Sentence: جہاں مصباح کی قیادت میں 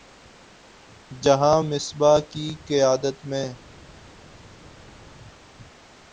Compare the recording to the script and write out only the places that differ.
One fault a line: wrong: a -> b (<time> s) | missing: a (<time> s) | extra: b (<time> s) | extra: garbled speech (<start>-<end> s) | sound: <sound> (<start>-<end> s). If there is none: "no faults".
no faults